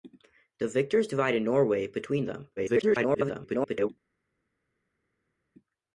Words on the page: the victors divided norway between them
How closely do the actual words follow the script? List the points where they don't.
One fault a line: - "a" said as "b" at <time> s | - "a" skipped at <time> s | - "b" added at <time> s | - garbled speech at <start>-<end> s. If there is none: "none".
- garbled speech at 2.6-3.9 s